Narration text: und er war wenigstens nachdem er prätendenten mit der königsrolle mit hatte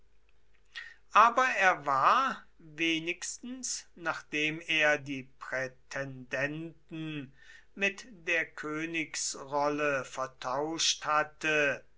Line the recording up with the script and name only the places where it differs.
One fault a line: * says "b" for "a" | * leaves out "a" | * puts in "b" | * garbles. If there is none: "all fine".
* says "aber" for "und"
* puts in "die"
* says "vertauscht" for "mit"